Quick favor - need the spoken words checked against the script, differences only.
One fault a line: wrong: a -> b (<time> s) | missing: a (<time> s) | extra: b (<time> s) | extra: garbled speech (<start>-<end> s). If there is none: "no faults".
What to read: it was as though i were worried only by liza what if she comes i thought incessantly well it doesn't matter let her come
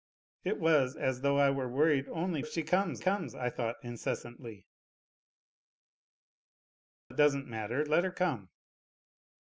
missing: by liza what (2.4 s)
extra: comes (3.0 s)
missing: well (4.7 s)